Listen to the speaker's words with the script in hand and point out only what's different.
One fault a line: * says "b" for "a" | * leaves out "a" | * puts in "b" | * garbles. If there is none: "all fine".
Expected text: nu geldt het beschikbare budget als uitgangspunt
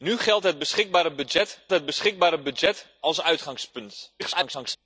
* puts in "het beschikbare budget"
* garbles